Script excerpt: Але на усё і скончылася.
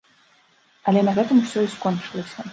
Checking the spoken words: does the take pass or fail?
fail